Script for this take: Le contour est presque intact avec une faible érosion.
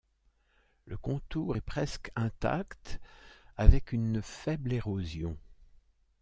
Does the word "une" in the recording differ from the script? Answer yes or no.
no